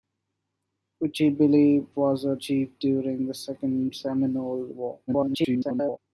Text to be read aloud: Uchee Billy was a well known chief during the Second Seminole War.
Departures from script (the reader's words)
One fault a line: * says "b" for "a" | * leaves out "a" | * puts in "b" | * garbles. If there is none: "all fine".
* leaves out "well known"
* garbles